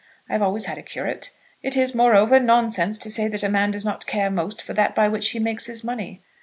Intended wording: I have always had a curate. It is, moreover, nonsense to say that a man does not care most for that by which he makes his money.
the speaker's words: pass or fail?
pass